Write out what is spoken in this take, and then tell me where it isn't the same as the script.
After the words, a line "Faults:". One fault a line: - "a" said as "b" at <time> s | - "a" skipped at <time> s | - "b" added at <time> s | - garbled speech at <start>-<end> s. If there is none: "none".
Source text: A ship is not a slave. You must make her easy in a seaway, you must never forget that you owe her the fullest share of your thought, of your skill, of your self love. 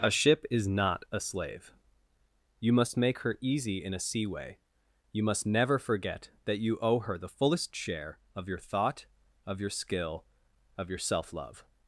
A ship is not a slave. You must make her easy in a seaway, you must never forget that you owe her the fullest share of your thought, of your skill, of your self love.
Faults:
none